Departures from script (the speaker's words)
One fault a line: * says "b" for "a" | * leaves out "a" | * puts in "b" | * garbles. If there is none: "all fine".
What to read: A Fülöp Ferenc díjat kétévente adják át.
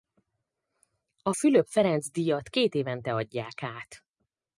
all fine